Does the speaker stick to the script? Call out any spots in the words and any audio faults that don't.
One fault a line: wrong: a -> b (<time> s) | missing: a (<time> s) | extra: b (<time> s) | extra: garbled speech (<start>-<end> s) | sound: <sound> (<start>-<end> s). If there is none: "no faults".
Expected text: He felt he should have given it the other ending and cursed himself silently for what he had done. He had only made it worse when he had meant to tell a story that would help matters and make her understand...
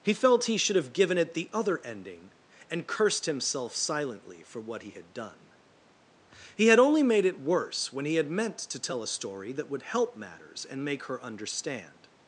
no faults